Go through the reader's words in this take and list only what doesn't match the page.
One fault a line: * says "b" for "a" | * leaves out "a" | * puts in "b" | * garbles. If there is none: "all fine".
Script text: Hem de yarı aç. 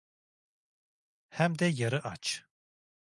all fine